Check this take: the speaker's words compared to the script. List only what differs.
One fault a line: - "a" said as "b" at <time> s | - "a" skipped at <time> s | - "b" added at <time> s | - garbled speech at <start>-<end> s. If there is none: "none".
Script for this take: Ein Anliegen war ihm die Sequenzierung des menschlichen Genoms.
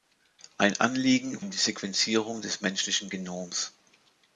- "war" skipped at 1.4 s